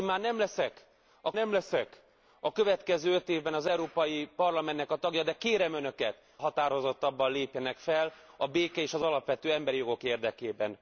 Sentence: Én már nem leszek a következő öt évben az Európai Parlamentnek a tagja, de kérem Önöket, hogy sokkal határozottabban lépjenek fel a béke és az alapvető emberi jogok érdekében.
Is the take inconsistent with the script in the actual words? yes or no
yes